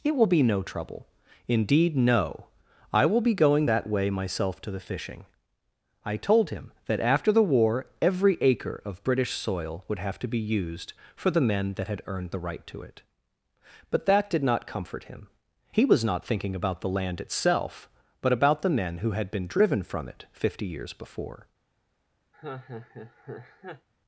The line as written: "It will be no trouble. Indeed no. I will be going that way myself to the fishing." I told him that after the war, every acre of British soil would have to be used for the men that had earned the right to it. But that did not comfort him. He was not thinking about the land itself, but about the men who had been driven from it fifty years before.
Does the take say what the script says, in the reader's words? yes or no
yes